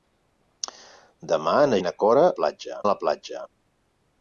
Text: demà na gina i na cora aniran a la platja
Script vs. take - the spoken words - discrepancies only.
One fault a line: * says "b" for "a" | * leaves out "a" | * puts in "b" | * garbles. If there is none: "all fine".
* leaves out "gina"
* says "platja" for "aniran"